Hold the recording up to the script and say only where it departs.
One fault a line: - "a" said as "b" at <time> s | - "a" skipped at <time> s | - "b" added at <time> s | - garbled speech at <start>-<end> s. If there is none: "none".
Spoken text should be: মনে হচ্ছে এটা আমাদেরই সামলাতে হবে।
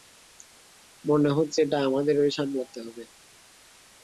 none